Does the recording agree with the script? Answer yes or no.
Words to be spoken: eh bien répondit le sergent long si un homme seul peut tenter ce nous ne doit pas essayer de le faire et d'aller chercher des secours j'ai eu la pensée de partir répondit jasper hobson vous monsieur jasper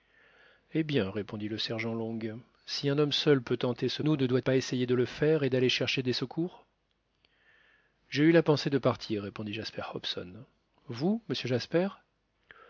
yes